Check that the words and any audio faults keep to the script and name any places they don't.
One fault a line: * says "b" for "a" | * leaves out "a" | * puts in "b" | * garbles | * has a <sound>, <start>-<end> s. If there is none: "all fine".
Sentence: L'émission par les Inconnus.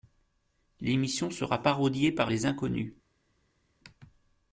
* puts in "sera parodiée"